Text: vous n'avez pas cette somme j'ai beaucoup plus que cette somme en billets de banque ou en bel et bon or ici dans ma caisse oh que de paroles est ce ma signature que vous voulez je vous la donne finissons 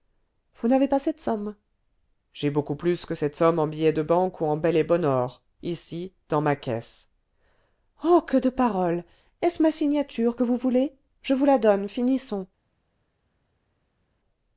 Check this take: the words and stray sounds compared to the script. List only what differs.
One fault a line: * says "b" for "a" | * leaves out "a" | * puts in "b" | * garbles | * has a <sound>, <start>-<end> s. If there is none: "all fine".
all fine